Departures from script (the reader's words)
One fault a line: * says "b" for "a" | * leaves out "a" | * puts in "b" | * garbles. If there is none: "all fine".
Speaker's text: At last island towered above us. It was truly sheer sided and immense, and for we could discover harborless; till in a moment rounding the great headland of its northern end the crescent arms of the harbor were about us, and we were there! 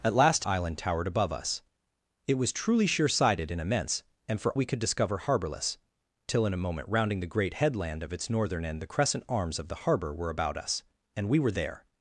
all fine